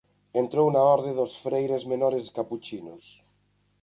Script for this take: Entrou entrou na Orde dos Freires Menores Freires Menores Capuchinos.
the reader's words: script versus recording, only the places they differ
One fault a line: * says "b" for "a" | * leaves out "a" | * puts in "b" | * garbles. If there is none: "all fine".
* leaves out "entrou"
* leaves out "Freires Menores"